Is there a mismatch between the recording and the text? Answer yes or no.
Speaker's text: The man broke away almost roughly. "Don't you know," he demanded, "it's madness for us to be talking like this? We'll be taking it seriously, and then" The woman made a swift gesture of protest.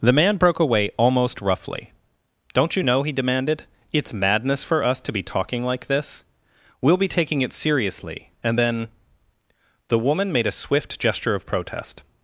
no